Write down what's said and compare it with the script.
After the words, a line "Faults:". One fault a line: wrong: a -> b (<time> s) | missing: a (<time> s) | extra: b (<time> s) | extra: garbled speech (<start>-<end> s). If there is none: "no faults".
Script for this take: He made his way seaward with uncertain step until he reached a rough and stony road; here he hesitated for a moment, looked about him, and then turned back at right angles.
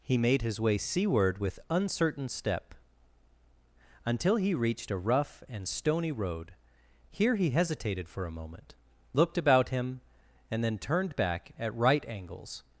He made his way seaward with uncertain step until he reached a rough and stony road; here he hesitated for a moment, looked about him, and then turned back at right angles.
Faults:
no faults